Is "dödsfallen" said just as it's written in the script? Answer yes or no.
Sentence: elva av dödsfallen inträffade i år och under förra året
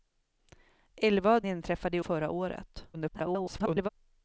no